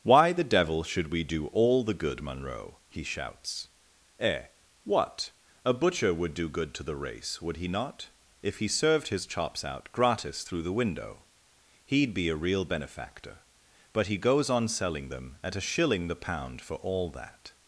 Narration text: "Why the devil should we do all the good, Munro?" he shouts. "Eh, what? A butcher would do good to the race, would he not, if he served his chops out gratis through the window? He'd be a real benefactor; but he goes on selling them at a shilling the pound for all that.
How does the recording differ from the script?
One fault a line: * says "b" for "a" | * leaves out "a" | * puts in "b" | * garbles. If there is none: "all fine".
all fine